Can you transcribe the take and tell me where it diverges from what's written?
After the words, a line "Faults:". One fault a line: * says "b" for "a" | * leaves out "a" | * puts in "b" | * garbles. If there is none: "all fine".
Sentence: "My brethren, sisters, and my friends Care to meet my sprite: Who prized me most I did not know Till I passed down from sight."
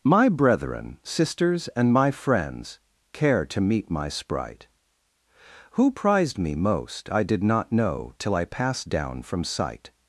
"My brethren, sisters, and my friends Care to meet my sprite: Who prized me most I did not know Till I passed down from sight."
Faults:
all fine